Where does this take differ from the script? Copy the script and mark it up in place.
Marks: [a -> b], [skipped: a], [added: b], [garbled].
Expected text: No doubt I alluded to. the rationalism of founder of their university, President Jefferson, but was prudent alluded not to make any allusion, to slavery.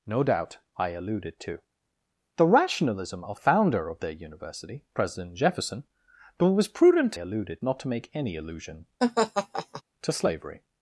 No doubt I alluded to. the rationalism of founder of their university, President Jefferson, but was prudent alluded not to make any allusion, to slavery.